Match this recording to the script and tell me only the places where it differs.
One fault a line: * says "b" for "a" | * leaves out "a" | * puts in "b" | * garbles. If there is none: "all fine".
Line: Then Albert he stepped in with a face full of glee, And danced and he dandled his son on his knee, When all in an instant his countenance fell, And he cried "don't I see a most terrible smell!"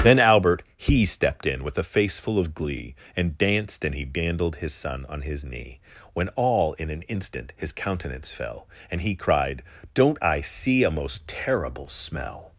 all fine